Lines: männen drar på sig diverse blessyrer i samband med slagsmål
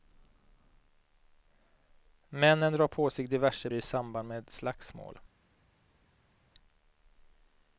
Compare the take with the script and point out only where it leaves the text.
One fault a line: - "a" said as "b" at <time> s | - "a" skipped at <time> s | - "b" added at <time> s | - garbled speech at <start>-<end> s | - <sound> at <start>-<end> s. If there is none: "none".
- "blessyrer" skipped at 3.7 s